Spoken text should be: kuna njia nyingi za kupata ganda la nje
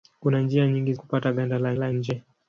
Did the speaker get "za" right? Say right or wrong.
wrong